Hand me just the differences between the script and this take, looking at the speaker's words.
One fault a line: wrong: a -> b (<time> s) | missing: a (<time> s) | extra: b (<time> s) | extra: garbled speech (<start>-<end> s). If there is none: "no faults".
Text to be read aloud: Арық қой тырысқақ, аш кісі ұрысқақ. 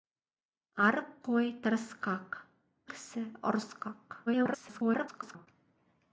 missing: аш (2.4 s)
extra: garbled speech (4.3-5.5 s)